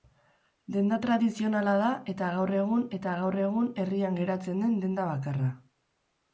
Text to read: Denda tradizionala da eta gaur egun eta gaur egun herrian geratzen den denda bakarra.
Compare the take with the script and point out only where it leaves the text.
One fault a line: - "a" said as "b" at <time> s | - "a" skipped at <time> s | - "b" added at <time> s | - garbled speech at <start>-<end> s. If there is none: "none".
none